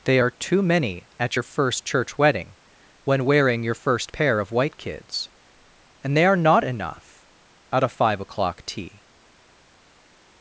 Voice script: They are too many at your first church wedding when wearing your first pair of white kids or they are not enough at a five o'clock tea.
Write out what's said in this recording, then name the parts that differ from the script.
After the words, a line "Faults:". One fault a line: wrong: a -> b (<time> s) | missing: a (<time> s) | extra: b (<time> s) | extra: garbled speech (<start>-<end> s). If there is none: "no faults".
They are too many at your first church wedding when wearing your first pair of white kids and they are not enough at a five o'clock tea.
Faults:
wrong: or -> and (6.0 s)